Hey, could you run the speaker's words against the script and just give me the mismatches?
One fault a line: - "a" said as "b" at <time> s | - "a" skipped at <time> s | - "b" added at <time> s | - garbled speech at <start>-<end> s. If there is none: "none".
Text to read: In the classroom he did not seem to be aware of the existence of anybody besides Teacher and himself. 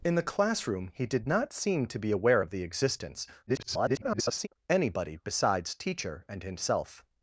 - garbled speech at 3.5-4.5 s